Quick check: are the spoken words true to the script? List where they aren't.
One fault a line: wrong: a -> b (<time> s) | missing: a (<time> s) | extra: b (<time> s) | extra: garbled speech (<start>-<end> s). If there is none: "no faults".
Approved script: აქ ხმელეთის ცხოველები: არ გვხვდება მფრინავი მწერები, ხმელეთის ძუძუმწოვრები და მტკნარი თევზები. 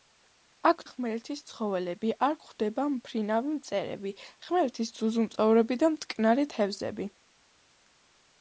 no faults